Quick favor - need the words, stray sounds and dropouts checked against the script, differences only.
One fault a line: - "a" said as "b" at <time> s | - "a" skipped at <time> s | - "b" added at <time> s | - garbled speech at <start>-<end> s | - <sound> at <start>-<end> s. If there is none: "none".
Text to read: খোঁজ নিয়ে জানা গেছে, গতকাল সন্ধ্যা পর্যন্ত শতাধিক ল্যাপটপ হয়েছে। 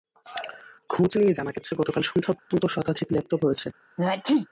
- dropout at 2.4-2.5 s
- sneeze at 4.0-4.5 s